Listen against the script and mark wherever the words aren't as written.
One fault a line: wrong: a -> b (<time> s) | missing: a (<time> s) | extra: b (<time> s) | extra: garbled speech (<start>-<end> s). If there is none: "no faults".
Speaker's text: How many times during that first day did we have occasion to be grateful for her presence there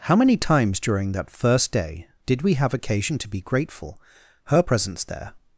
missing: for (4.0 s)